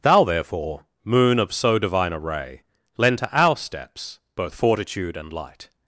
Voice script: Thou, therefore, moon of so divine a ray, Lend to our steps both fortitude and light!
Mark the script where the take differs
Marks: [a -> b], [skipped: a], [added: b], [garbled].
Thou, therefore, moon of so divine a ray, Lend to our steps both fortitude and light!